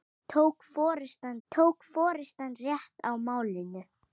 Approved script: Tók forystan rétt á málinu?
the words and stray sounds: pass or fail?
fail